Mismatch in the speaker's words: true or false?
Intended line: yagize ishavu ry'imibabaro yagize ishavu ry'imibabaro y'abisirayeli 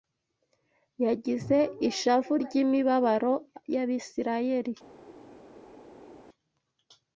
true